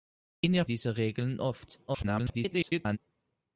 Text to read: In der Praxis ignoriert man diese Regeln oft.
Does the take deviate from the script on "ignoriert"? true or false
true